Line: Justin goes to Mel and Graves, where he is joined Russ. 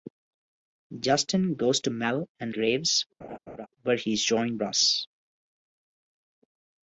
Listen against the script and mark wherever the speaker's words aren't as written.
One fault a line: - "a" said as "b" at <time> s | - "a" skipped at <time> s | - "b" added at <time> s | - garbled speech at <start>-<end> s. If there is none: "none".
none